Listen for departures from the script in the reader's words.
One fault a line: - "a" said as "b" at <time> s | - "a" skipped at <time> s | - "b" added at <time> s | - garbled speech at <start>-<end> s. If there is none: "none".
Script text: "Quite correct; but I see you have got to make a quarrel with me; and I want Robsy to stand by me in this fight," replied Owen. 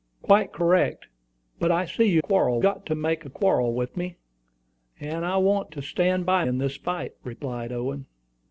- "have" said as "quarrel" at 2.2 s
- "Robsy" skipped at 5.7 s
- "me" skipped at 6.4 s